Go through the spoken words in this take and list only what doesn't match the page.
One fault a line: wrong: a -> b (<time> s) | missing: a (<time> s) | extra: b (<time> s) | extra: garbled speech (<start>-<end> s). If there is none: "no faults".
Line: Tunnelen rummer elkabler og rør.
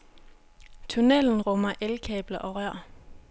no faults